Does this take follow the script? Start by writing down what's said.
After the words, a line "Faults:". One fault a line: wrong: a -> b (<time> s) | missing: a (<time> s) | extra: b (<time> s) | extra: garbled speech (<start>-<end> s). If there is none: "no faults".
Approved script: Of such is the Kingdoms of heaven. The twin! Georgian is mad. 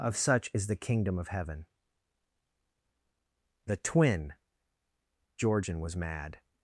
Of such is the Kingdom of heaven. The twin! Georgian was mad.
Faults:
wrong: Kingdoms -> Kingdom (0.8 s)
wrong: is -> was (5.8 s)